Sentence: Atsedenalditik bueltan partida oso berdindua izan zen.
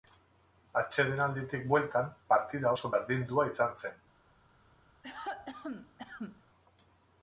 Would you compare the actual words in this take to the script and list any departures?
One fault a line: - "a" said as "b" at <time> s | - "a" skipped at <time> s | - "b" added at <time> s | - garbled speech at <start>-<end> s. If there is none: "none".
none